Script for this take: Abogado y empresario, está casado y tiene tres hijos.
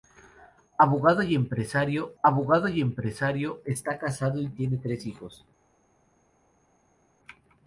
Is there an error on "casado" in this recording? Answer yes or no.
no